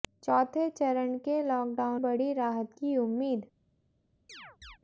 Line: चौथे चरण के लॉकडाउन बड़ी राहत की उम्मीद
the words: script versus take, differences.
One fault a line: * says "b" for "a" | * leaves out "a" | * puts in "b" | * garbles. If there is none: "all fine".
all fine